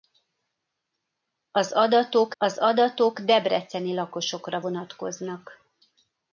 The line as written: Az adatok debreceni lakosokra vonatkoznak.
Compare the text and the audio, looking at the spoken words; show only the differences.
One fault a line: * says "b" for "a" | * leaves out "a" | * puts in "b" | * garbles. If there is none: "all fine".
* puts in "az adatok"